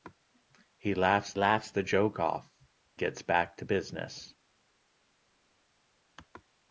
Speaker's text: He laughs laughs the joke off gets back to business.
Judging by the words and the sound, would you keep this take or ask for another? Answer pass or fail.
pass